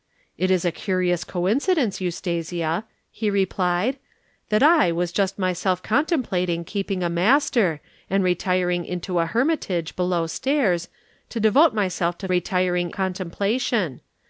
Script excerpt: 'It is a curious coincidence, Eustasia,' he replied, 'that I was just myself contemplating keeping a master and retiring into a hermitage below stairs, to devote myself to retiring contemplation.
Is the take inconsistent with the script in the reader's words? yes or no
no